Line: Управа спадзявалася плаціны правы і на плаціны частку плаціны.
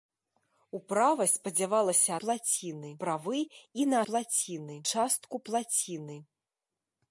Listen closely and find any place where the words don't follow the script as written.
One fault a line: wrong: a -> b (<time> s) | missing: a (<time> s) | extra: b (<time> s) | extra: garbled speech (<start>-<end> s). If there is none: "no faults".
no faults